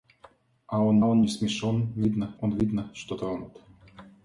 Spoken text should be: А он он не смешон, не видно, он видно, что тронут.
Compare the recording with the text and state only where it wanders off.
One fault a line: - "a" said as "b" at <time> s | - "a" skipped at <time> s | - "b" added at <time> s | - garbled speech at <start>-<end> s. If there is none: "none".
none